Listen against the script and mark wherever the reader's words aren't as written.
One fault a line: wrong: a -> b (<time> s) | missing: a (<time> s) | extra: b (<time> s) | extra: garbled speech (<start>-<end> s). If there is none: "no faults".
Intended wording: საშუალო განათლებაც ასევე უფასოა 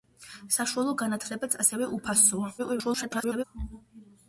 extra: garbled speech (2.6-3.4 s)